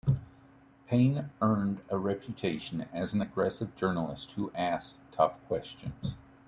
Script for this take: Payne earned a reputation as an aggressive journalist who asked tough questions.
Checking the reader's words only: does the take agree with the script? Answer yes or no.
yes